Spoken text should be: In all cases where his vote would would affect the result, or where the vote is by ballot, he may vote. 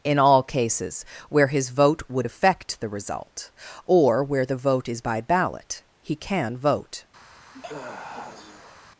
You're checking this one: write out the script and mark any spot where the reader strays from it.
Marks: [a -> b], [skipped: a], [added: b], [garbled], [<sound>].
In all cases where his vote would [skipped: would] affect the result, or where the vote is by ballot, he [may -> can] vote. [sigh]